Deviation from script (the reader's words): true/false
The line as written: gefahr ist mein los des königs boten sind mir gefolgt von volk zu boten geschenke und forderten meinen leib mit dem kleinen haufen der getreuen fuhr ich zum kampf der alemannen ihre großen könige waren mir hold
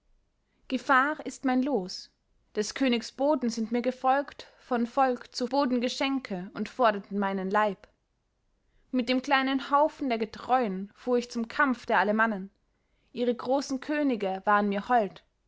false